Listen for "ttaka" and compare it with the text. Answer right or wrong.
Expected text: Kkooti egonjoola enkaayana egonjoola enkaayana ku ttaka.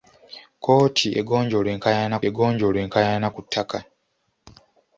right